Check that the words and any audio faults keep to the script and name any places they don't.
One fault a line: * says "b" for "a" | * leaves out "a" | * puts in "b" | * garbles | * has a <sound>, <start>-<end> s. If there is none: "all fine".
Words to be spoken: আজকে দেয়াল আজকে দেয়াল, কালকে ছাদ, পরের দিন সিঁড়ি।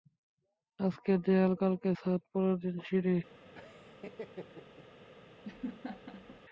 * leaves out "আজকে দেয়াল"
* has a laugh, 3.5-4.9 s
* has a laugh, 5.4-6.4 s